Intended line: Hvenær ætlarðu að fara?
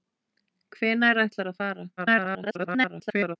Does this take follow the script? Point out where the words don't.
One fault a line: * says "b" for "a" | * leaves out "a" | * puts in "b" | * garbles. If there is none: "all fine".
* garbles